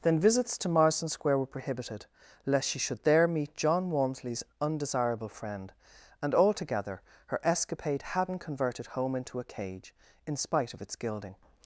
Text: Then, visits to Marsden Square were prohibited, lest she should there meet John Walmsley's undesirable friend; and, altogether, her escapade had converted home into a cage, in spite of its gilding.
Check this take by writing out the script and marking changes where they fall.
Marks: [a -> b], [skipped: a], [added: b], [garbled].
Then, visits to Marsden Square were prohibited, lest she should there meet John Walmsley's undesirable friend; and, altogether, her escapade [had -> hadn't] converted home into a cage, in spite of its gilding.